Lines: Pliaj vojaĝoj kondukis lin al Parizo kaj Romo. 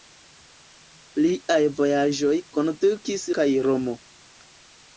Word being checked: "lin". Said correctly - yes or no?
no